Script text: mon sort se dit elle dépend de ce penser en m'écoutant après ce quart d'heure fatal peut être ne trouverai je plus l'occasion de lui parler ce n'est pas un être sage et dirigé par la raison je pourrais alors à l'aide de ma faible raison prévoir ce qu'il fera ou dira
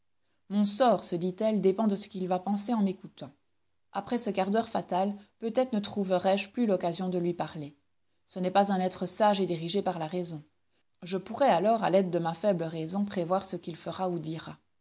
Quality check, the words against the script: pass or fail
fail